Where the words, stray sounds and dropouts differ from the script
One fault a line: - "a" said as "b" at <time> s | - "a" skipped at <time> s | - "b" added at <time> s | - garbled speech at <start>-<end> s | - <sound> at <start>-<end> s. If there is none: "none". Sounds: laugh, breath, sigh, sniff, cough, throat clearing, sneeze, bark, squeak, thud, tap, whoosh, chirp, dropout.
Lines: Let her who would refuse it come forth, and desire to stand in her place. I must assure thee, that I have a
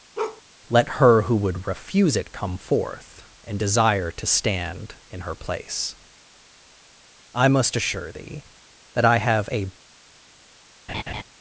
- bark at 0.2-0.4 s
- laugh at 10.9-11.2 s